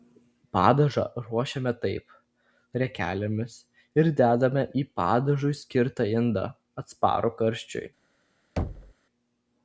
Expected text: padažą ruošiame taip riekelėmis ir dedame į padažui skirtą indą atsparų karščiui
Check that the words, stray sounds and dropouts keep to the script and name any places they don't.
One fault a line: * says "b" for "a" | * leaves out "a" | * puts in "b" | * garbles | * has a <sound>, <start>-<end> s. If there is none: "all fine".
* has a thud, 8.6-8.9 s